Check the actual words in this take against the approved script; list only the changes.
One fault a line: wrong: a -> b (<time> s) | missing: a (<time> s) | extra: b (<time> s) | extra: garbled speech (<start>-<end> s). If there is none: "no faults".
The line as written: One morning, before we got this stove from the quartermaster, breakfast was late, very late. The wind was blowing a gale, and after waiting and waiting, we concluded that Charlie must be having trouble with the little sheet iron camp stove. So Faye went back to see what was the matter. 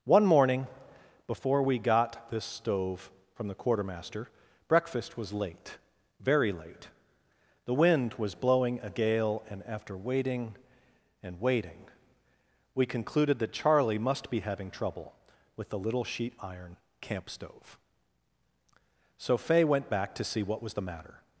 no faults